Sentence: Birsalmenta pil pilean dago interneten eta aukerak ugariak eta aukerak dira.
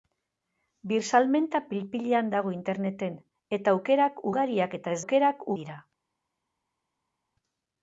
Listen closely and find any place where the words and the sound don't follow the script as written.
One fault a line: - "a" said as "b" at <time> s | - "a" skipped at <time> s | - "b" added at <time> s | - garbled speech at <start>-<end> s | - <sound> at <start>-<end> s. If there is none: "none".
none